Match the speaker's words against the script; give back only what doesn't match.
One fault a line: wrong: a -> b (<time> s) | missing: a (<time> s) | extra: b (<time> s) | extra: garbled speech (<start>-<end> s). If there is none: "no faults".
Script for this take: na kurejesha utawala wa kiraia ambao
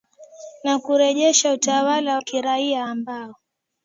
missing: wa (2.2 s)